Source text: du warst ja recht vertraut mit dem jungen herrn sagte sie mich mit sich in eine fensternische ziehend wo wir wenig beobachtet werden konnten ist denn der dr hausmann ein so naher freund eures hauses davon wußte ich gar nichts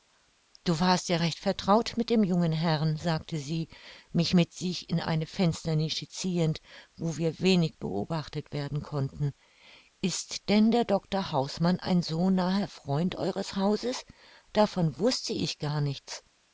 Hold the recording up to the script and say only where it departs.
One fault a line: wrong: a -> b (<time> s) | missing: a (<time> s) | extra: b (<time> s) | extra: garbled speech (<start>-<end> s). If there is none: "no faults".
no faults